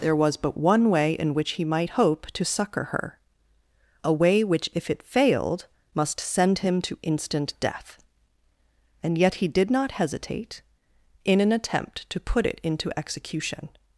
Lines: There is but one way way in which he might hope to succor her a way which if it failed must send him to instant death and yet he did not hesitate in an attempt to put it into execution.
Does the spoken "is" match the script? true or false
false